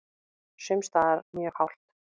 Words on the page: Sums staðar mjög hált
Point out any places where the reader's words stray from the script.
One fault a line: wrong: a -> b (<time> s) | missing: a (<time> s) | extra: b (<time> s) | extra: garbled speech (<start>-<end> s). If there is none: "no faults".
no faults